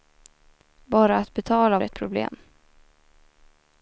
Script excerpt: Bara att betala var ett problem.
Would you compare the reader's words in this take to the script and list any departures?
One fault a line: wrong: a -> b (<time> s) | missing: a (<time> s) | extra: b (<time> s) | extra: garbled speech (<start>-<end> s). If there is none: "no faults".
missing: var (1.8 s)